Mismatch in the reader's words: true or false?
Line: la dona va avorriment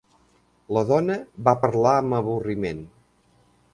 true